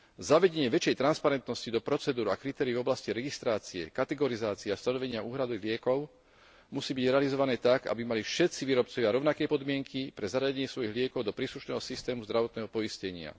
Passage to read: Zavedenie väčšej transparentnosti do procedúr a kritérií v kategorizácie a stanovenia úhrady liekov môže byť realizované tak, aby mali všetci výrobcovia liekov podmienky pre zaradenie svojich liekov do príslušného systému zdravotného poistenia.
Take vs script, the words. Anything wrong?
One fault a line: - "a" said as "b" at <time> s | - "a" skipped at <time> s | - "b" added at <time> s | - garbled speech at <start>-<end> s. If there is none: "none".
- "oblasti registrácie" added at 2.8 s
- "môže" said as "musí" at 6.7 s
- "liekov" said as "rovnaké" at 9.1 s